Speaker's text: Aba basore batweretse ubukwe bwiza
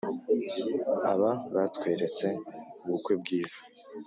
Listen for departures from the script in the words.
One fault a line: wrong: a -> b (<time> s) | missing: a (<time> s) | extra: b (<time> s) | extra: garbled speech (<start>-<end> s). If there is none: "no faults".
missing: basore (1.3 s)